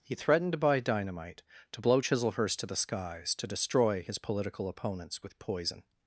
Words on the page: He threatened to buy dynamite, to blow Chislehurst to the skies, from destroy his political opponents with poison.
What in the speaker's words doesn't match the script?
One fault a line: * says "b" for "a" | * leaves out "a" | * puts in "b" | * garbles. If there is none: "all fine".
* says "to" for "from"